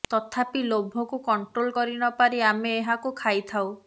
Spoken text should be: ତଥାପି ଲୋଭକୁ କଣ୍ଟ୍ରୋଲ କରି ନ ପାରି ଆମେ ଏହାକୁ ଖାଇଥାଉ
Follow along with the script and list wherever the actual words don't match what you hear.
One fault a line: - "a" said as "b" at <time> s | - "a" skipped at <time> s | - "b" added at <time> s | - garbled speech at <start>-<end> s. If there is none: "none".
none